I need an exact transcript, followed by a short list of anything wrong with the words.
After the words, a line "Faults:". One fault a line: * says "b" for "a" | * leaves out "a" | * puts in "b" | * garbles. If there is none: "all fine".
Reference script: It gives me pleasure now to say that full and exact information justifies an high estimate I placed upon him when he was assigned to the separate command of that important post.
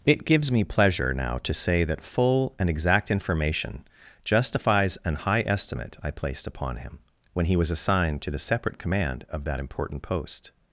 It gives me pleasure now to say that full and exact information justifies an high estimate I placed upon him when he was assigned to the separate command of that important post.
Faults:
all fine